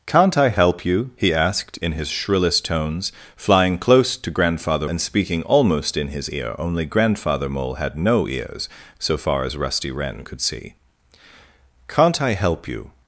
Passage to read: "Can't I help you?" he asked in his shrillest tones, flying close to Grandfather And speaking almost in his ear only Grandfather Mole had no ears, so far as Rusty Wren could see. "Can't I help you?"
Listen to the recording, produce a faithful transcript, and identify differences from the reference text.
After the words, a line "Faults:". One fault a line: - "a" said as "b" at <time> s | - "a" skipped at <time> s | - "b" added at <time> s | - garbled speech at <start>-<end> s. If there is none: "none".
"Can't I help you?" he asked in his shrillest tones, flying close to Grandfather And speaking almost in his ear only Grandfather Mole had no ears, so far as Rusty Wren could see. "Can't I help you?"
Faults:
none